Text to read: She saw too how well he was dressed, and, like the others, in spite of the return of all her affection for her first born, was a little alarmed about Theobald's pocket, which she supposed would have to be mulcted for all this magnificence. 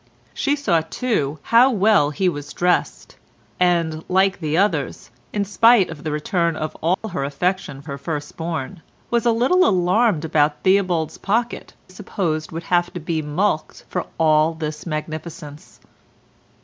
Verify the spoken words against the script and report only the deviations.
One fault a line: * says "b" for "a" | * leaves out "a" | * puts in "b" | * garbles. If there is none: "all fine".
* leaves out "for"
* leaves out "which she"